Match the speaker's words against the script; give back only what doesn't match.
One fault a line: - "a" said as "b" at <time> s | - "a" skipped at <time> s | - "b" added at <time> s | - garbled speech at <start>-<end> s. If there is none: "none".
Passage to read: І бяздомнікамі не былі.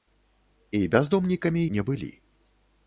none